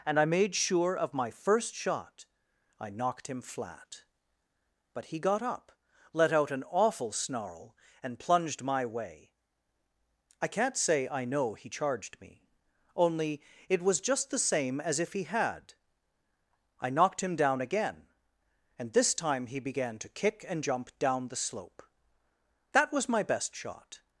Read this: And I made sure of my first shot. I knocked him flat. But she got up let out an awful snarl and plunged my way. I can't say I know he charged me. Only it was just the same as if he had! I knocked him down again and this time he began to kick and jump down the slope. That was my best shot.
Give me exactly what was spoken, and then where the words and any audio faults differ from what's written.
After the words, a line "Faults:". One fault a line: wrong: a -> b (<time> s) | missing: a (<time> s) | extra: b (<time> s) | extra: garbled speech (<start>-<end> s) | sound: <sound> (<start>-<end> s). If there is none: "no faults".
And I made sure of my first shot. I knocked him flat. But he got up let out an awful snarl and plunged my way. I can't say I know he charged me. Only it was just the same as if he had! I knocked him down again and this time he began to kick and jump down the slope. That was my best shot.
Faults:
wrong: she -> he (5.0 s)